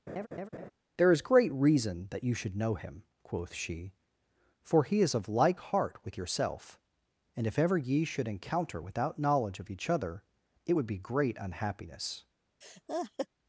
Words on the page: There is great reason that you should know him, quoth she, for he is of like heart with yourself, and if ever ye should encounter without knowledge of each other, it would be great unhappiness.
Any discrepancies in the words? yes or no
no